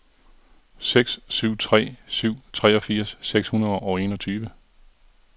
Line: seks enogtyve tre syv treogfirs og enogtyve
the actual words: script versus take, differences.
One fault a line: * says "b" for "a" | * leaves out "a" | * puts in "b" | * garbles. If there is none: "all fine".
* says "syv" for "enogtyve"
* puts in "seks hundrede"